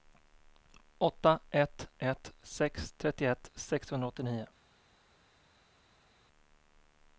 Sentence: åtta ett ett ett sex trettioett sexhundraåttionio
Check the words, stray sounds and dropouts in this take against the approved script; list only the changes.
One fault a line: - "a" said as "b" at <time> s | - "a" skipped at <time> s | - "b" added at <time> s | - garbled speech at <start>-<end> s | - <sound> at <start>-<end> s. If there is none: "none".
- "ett" skipped at 2.3 s